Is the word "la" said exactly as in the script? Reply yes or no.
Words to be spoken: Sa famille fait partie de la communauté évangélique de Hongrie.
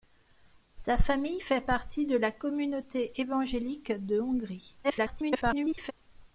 yes